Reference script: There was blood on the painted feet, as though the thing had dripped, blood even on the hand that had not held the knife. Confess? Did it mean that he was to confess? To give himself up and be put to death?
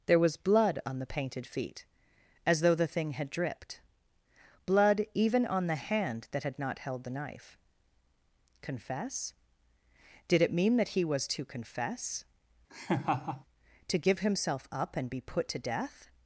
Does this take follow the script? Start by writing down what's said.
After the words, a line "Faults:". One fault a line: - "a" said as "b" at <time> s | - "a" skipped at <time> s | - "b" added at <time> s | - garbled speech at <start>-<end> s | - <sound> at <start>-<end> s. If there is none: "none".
There was blood on the painted feet, as though the thing had dripped, blood even on the hand that had not held the knife. Confess? Did it mean that he was to confess? To give himself up and be put to death?
Faults:
- laugh at 12.7-13.4 s